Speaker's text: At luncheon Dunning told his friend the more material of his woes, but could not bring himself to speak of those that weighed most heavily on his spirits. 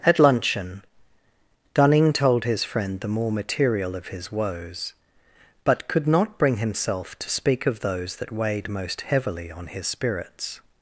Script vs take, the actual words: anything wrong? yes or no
no